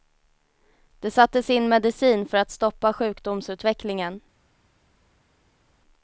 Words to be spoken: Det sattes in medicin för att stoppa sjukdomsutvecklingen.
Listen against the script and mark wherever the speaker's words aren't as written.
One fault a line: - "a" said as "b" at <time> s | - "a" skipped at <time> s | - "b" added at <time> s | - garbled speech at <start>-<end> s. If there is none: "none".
none